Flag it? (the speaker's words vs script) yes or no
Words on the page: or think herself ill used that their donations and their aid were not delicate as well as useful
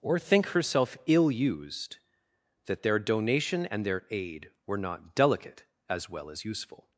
yes